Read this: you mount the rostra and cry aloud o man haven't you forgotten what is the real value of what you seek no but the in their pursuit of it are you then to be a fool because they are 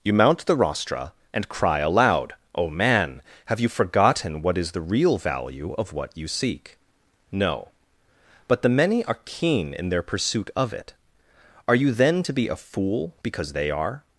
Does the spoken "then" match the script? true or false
true